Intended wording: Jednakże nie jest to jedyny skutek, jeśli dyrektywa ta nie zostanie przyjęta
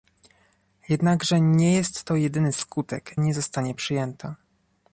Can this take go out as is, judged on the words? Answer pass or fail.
fail